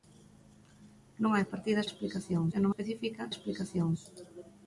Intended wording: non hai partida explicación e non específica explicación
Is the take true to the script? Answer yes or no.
yes